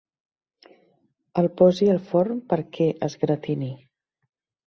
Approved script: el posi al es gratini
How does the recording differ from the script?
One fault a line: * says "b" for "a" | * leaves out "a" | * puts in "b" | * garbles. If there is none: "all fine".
* puts in "forn perquè"